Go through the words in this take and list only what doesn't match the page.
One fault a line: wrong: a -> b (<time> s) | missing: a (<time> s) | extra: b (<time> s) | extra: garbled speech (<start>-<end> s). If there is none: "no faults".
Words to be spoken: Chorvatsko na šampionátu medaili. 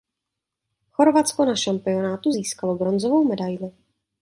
extra: získalo bronzovou (2.3 s)